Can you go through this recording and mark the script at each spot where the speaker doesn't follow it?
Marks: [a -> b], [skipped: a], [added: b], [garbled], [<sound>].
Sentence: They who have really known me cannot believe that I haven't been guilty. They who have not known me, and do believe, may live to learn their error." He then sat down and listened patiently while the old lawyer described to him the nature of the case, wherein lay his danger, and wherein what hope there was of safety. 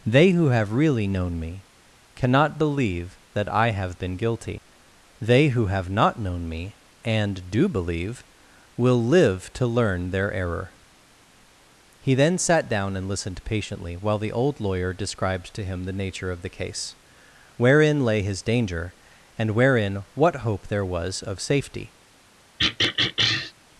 They who have really known me cannot believe that I [haven't -> have] been guilty. They who have not known me, and do believe, [may -> will] live to learn their error." He then sat down and listened patiently while the old lawyer described to him the nature of the case, wherein lay his danger, and wherein what hope there was of safety. [throat clearing]